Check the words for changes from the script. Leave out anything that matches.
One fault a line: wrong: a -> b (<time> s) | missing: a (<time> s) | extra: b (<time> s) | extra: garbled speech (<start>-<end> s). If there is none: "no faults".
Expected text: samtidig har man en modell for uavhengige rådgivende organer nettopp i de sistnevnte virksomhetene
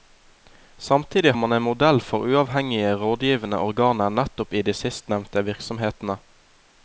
missing: har (1.3 s)